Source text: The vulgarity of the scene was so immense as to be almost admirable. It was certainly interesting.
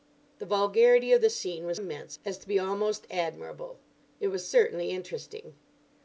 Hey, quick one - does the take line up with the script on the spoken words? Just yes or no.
no